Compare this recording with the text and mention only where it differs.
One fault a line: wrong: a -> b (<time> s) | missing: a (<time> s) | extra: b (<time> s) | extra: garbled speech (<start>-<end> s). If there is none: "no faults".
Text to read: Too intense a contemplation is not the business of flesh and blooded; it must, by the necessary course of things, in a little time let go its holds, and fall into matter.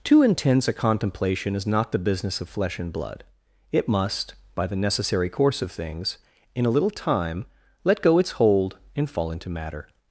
wrong: blooded -> blood (2.9 s)
wrong: holds -> hold (8.3 s)